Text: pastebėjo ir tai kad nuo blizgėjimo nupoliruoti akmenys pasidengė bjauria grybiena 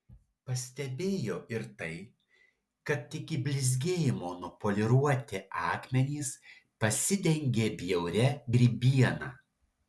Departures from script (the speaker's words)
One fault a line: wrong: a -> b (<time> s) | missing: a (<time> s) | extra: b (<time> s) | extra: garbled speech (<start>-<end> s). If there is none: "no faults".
wrong: nuo -> iki (3.2 s)